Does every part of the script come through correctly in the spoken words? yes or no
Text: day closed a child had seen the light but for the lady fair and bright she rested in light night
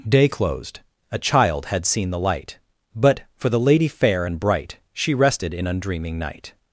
no